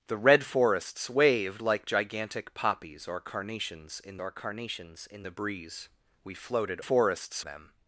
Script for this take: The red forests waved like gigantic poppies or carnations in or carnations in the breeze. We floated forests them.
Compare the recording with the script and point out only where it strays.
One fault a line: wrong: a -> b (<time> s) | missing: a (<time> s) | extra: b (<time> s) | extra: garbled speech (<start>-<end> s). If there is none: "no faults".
no faults